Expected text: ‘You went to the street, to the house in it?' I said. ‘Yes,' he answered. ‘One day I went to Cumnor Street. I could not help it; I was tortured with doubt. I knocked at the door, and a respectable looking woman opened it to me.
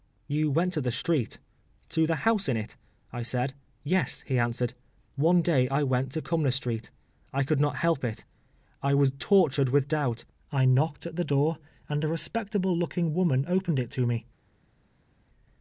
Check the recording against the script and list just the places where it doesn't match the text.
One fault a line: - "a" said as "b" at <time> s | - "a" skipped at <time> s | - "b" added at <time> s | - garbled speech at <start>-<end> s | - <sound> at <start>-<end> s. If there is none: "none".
none